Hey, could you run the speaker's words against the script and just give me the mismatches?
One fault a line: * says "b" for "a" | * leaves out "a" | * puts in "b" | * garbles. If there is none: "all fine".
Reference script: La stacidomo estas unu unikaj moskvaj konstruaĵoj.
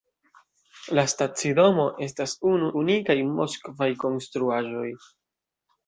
all fine